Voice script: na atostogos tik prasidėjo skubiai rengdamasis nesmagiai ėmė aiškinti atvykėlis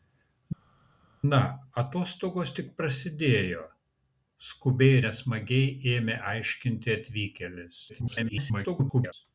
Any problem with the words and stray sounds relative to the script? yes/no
yes